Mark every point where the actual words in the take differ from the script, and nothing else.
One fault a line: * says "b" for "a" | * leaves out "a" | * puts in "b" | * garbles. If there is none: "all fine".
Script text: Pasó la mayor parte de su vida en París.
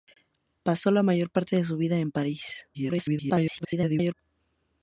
* garbles